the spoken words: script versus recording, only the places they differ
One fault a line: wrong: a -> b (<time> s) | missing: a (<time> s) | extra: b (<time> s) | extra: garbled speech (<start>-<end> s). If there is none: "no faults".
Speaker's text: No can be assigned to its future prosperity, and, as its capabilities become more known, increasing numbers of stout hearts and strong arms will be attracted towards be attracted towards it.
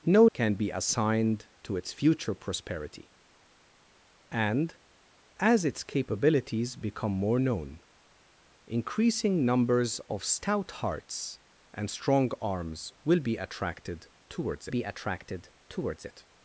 no faults